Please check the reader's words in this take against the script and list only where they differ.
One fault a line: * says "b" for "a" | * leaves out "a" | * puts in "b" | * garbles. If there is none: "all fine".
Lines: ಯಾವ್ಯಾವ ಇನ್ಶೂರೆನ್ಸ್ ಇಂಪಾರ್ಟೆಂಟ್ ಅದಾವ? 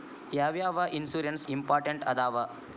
all fine